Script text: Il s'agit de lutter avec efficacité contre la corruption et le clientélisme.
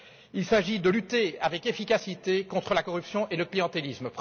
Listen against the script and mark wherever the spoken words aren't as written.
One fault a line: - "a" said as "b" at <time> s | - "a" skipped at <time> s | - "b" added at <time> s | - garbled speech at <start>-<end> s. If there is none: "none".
none